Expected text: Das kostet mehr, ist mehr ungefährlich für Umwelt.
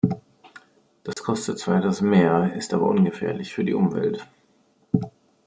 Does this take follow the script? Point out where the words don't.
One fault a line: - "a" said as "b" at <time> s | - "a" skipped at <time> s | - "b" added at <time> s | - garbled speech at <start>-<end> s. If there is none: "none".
- "zwar etwas" added at 1.6 s
- "mehr" said as "aber" at 2.7 s
- "die" added at 3.6 s